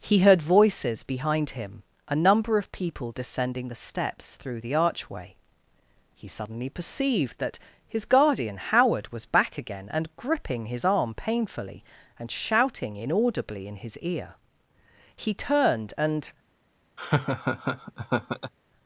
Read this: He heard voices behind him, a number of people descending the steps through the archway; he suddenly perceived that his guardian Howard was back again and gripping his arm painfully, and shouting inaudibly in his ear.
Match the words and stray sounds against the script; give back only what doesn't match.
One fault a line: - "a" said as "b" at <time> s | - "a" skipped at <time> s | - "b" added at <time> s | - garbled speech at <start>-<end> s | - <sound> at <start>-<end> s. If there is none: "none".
- "He turned and" added at 15.2 s
- laugh at 17.0-18.5 s